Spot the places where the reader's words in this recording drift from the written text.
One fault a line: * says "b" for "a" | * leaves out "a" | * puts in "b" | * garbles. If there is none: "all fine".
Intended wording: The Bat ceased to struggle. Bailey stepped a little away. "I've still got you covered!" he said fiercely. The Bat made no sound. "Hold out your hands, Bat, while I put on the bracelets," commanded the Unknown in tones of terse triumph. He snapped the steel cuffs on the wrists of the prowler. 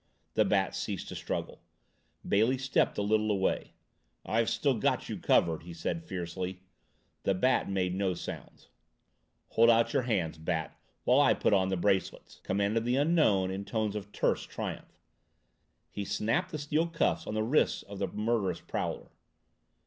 * puts in "murderous"